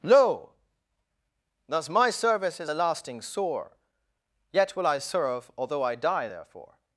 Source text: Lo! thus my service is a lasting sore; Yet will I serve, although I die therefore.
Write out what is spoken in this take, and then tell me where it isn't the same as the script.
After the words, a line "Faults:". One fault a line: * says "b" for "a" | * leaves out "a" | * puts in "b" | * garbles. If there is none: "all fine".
Lo! thus my service is a lasting sore; Yet will I serve, although I die therefore.
Faults:
all fine